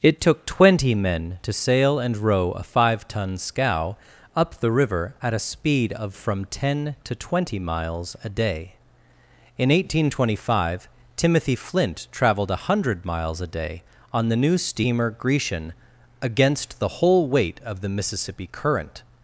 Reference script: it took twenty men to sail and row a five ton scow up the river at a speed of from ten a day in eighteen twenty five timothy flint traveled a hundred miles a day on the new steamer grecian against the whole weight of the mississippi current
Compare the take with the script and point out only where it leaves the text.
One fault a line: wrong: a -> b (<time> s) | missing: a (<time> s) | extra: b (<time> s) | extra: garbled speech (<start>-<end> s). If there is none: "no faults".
extra: to twenty miles (7.0 s)